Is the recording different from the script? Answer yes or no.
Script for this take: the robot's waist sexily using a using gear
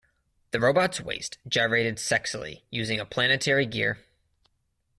yes